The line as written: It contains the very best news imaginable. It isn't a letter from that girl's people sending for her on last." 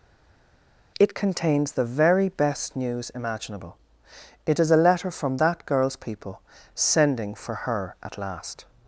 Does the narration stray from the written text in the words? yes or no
yes